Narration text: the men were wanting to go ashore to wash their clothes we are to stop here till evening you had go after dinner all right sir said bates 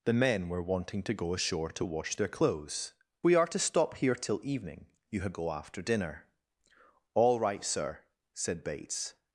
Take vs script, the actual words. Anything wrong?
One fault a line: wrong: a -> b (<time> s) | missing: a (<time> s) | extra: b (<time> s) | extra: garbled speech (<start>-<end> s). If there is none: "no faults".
no faults